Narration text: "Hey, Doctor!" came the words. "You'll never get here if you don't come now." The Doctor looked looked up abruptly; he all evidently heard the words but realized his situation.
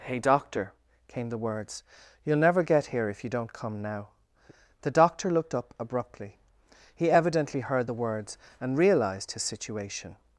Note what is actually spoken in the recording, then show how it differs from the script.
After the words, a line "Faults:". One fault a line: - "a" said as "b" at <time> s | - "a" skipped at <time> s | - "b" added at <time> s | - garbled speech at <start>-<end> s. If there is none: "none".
"Hey, Doctor!" came the words. "You'll never get here if you don't come now." The Doctor looked up abruptly; he evidently heard the words and realized his situation.
Faults:
- "looked" skipped at 5.5 s
- "all" skipped at 7.1 s
- "but" said as "and" at 8.6 s